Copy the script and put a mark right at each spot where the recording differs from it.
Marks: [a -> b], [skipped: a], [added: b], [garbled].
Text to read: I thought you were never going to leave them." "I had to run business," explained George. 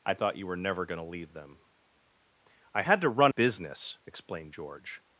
I thought you were never going to leave them." "I had to run business," explained George.